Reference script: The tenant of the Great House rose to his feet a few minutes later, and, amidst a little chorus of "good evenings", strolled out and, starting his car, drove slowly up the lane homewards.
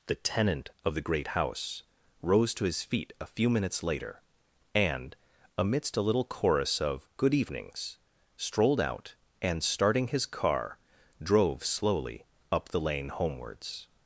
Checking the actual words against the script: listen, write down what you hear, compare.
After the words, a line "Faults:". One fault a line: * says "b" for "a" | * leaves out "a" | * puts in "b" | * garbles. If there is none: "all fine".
The tenant of the Great House rose to his feet a few minutes later, and, amidst a little chorus of "good evenings", strolled out and, starting his car, drove slowly up the lane homewards.
Faults:
all fine